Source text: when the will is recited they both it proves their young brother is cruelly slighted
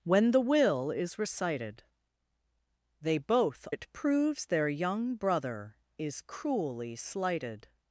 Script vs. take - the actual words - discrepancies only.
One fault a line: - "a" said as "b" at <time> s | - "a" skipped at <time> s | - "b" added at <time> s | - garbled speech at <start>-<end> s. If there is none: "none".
none